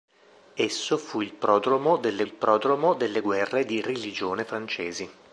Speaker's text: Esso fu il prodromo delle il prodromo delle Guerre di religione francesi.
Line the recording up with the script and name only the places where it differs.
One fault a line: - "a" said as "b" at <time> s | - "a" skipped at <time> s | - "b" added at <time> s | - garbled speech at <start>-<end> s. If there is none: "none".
none